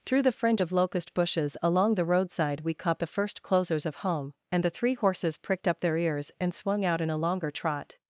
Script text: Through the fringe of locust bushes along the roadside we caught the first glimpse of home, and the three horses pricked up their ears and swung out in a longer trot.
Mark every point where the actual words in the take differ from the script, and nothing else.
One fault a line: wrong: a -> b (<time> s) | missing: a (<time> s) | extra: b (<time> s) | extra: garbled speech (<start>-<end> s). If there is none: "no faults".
wrong: glimpse -> closers (3.4 s)